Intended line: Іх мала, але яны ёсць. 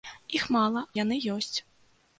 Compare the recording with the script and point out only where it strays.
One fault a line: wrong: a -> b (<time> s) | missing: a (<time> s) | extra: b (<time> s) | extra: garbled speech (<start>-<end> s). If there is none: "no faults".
missing: але (0.8 s)